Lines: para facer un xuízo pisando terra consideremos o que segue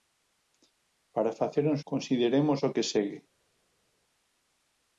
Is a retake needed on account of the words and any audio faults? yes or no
yes